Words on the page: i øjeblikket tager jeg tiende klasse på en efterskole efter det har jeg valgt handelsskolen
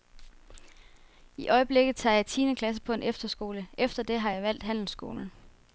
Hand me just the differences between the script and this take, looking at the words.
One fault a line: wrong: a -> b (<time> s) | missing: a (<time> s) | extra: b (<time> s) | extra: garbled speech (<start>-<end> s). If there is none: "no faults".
no faults